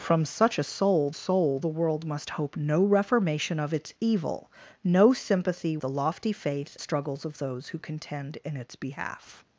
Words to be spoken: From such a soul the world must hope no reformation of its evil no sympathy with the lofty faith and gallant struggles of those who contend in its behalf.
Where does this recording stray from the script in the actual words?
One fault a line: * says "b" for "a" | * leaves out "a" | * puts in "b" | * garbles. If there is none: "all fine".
* puts in "soul"
* leaves out "with"
* leaves out "and gallant"